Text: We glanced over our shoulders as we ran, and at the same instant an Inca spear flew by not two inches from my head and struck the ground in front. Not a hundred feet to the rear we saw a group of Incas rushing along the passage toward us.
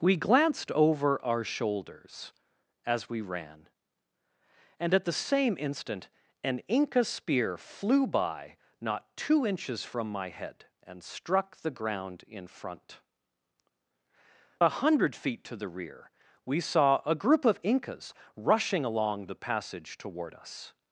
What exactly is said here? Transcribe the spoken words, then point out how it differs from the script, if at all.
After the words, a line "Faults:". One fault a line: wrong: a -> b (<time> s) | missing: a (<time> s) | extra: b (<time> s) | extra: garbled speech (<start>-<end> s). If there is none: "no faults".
We glanced over our shoulders as we ran, and at the same instant an Inca spear flew by not two inches from my head and struck the ground in front. A hundred feet to the rear we saw a group of Incas rushing along the passage toward us.
Faults:
missing: Not (13.0 s)